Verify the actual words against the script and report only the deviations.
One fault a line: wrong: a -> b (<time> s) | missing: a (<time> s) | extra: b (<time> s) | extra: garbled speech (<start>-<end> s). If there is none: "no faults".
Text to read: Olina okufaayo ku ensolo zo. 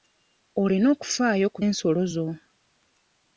no faults